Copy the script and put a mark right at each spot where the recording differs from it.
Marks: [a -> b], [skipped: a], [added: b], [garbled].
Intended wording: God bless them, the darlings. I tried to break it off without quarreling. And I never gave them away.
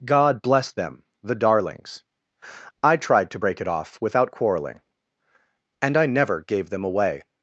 God bless them, the darlings. I tried to break it off without quarreling. And I never gave them away.